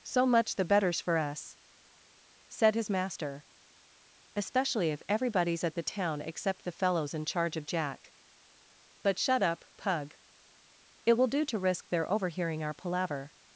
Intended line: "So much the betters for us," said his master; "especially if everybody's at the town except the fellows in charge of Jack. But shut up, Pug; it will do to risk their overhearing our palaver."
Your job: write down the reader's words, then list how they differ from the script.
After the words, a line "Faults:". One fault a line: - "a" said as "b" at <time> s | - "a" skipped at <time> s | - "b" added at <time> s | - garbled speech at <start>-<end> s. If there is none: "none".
"So much the betters for us," said his master; "especially if everybody's at the town except the fellows in charge of Jack. But shut up, Pug; it will do to risk their overhearing our palaver."
Faults:
none